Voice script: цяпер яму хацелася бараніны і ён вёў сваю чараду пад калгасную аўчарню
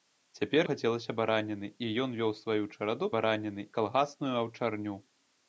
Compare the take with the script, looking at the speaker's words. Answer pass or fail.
fail